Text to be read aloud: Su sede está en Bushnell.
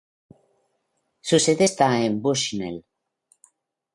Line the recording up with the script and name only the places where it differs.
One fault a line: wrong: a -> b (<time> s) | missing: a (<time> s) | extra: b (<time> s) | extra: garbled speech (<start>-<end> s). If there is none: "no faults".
no faults